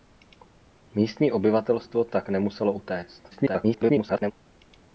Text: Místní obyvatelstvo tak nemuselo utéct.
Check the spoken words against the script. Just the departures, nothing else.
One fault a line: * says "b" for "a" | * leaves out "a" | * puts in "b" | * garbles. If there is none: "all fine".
* garbles